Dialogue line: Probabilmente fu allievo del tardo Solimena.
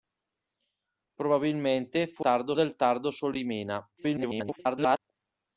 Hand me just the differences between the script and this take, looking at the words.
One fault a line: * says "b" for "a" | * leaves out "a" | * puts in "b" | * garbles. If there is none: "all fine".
* says "tardo" for "allievo"
* garbles